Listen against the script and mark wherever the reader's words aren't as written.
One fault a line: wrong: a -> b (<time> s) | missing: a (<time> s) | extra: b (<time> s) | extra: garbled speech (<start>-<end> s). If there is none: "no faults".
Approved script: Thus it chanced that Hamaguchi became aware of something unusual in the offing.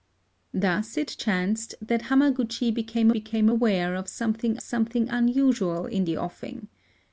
extra: became (3.1 s)
extra: something (4.6 s)